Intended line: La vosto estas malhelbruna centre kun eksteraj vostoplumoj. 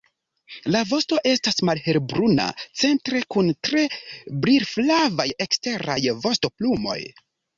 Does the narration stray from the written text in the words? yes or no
yes